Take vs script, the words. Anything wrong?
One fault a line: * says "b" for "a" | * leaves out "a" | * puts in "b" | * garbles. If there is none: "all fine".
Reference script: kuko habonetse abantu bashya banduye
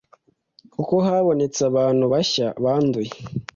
all fine